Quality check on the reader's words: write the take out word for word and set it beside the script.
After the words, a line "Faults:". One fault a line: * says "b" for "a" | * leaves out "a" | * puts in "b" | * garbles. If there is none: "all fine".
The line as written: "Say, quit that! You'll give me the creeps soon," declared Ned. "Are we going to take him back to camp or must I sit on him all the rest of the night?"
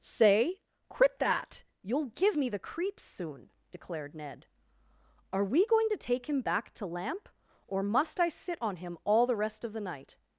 "Say, quit that! You'll give me the creeps soon," declared Ned. "Are we going to take him back to lamp or must I sit on him all the rest of the night?"
Faults:
* says "lamp" for "camp"